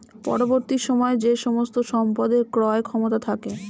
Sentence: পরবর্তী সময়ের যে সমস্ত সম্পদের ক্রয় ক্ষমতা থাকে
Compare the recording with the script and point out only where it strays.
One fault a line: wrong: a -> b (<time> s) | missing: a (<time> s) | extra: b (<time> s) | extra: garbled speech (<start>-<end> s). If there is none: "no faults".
no faults